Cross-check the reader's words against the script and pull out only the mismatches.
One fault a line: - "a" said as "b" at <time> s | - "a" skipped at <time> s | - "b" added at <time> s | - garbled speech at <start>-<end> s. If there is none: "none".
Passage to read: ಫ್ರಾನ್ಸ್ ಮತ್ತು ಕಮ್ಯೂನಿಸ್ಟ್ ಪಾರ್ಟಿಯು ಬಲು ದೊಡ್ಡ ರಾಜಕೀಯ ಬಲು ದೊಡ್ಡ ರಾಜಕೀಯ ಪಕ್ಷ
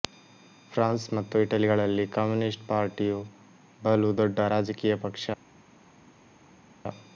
- "ಇಟಲಿಗಳಲ್ಲಿ" added at 1.4 s
- "ಬಲು ದೊಡ್ಡ ರಾಜಕೀಯ" skipped at 5.0 s